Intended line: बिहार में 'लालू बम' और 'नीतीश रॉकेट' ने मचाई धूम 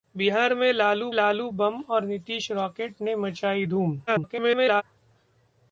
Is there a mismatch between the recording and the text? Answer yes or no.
yes